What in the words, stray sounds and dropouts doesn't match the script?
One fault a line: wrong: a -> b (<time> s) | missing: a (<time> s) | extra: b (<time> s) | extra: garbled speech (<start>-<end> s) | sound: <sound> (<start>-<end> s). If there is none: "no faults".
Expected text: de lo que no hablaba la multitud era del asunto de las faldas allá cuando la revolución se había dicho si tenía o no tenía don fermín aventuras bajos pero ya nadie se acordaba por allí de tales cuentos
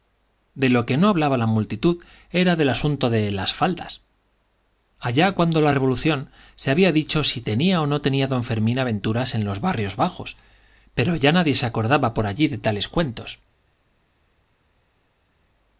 extra: en los barrios (9.3 s)